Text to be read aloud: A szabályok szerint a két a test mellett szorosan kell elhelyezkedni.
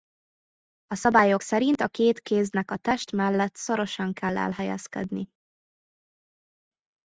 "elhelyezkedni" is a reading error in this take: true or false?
false